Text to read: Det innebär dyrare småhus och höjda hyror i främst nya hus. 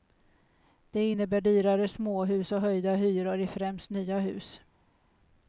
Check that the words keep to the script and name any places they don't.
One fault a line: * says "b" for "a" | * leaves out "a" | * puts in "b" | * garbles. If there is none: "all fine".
all fine